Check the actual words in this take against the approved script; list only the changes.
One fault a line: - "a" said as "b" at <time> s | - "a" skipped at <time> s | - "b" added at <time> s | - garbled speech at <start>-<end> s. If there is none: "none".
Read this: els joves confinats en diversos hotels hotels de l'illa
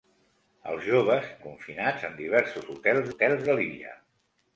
none